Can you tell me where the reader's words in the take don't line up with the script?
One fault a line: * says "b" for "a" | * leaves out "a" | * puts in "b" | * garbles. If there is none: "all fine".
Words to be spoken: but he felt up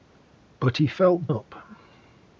all fine